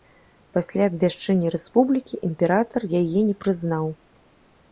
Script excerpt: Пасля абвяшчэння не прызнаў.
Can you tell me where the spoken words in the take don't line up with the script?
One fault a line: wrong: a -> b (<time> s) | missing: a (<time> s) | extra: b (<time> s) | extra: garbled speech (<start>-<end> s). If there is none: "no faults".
extra: рэспублікі імператар яе (1.6 s)